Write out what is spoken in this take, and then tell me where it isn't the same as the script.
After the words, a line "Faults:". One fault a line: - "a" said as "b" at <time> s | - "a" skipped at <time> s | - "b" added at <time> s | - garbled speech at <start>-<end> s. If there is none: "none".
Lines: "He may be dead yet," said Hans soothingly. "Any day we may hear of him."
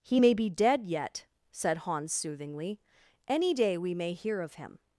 "He may be dead yet," said Hans soothingly. "Any day we may hear of him."
Faults:
none